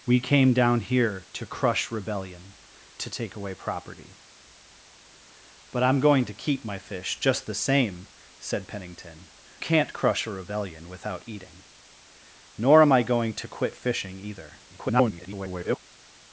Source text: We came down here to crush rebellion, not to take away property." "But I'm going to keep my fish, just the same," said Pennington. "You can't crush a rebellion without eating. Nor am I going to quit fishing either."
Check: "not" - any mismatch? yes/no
yes